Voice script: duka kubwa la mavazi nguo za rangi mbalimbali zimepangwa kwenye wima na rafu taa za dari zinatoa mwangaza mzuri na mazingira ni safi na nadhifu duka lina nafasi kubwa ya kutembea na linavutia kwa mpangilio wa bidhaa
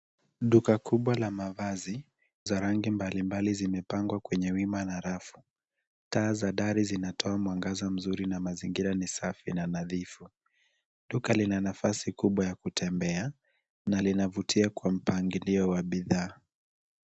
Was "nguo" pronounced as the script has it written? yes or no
no